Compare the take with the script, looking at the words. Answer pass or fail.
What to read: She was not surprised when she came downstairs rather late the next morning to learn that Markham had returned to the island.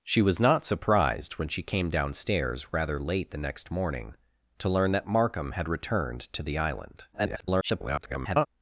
fail